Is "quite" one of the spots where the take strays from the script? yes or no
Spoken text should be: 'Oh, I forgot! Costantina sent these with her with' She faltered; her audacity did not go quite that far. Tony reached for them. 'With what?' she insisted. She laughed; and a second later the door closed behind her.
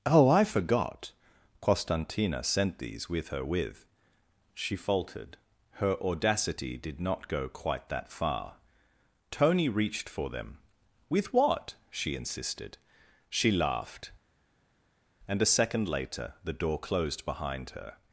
no